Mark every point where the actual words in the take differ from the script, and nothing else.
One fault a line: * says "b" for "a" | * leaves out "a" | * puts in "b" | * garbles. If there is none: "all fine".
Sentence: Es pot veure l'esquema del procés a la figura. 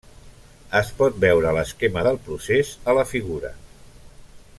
all fine